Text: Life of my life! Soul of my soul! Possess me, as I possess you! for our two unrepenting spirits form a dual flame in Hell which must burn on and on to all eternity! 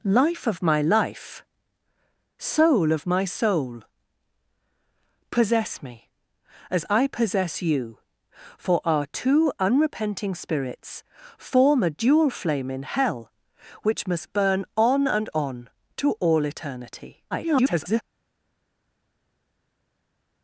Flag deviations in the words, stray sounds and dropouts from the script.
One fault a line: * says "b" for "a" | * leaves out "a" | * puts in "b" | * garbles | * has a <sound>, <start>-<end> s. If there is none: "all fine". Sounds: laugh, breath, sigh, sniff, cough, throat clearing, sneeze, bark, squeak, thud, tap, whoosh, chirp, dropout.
* garbles